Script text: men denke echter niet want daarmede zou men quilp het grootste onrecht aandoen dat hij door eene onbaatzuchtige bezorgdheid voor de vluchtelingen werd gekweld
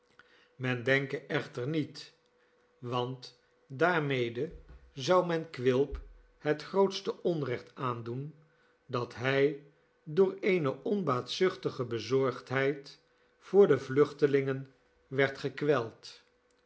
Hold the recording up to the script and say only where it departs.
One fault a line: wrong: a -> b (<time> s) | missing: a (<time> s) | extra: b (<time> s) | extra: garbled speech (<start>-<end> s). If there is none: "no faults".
no faults